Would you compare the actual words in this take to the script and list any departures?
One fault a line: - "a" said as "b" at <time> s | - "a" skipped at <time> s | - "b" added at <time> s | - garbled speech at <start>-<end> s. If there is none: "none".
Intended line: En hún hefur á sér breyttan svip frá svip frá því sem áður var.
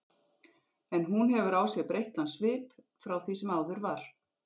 - "svip frá" skipped at 3.1 s